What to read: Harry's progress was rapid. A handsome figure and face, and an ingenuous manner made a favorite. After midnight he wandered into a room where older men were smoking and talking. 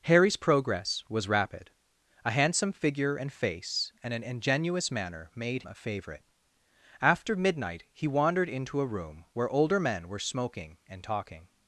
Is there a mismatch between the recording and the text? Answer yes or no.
no